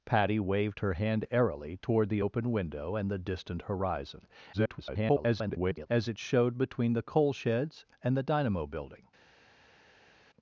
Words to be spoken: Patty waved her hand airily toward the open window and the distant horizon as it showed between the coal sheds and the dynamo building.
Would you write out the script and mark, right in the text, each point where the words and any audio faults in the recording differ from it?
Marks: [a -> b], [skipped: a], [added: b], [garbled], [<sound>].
Patty waved her hand airily toward the open window and the distant horizon [garbled] as it showed between the coal sheds and the dynamo building.